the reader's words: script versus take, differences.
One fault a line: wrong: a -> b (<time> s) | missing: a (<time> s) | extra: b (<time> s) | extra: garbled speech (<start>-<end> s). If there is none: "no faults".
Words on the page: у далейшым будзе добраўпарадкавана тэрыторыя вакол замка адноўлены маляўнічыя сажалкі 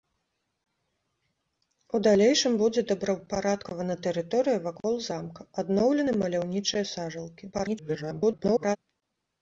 extra: garbled speech (7.5-8.8 s)